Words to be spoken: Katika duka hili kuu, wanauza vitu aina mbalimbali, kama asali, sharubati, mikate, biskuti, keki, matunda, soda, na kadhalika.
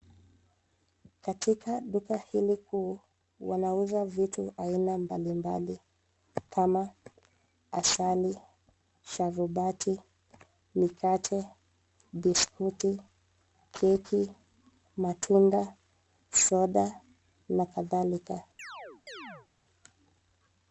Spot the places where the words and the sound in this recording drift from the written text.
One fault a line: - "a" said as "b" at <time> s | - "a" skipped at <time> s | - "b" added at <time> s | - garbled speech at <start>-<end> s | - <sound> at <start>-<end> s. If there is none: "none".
- chirp at 18.6-19.5 s